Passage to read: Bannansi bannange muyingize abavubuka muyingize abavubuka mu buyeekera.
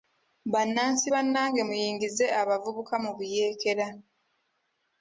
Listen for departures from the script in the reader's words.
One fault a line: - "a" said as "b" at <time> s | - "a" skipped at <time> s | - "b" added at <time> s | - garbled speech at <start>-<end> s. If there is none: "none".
- "muyingize abavubuka" skipped at 2.9 s